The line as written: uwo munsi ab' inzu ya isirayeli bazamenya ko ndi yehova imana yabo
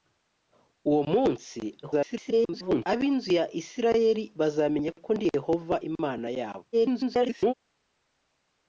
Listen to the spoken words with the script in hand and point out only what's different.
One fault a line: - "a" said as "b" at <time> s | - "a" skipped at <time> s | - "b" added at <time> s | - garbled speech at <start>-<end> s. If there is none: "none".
- garbled speech at 1.8-2.9 s
- garbled speech at 6.7-7.5 s